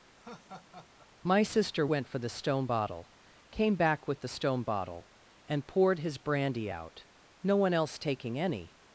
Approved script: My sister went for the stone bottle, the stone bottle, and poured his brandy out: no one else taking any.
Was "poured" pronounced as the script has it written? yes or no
yes